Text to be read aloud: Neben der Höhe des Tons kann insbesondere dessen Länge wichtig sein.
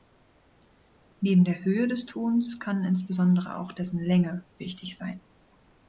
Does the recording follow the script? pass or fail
fail